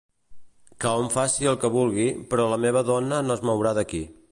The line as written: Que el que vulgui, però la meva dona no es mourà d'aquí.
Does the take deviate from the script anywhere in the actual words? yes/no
yes